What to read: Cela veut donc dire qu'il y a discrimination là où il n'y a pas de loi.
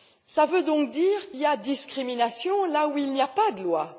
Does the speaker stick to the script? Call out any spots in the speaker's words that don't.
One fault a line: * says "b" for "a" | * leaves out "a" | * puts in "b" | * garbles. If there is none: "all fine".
* leaves out "qu'il"